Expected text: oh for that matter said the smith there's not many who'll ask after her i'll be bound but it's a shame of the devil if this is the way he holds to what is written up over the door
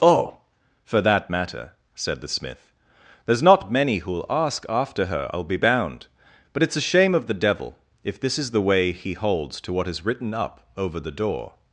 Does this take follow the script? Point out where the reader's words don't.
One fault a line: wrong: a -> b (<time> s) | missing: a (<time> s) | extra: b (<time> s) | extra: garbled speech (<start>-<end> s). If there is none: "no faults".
no faults